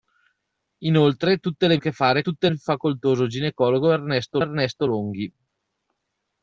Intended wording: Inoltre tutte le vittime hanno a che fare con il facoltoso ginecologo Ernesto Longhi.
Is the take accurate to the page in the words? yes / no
no